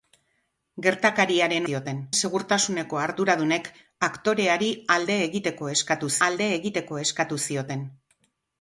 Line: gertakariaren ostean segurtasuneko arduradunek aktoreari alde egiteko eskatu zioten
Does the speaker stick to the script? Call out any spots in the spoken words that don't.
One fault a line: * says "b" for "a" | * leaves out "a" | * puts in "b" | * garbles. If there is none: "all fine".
* says "zioten" for "ostean"
* puts in "alde egiteko eskatu"